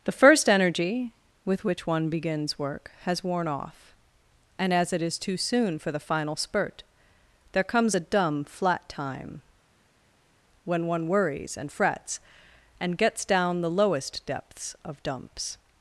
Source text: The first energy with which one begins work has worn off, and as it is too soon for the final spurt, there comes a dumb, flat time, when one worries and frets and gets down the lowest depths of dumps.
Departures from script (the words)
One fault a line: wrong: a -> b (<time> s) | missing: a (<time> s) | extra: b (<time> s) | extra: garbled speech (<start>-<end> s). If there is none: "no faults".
no faults